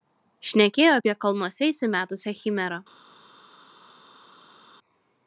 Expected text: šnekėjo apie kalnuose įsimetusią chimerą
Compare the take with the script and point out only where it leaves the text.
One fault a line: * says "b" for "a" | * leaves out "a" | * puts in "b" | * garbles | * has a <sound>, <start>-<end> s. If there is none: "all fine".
all fine